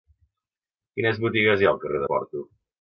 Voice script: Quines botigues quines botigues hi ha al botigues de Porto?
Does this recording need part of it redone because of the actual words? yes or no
yes